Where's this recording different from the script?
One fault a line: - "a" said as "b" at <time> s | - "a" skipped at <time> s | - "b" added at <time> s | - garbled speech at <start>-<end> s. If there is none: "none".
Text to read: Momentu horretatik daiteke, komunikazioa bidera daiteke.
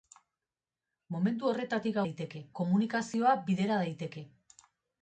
none